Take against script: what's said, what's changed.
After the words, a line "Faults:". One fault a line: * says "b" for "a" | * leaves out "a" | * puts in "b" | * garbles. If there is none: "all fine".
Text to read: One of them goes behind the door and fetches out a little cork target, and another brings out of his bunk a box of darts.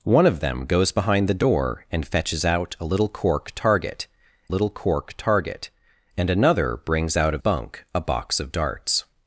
One of them goes behind the door and fetches out a little cork target little cork target, and another brings out of bunk a box of darts.
Faults:
* puts in "little cork target"
* leaves out "his"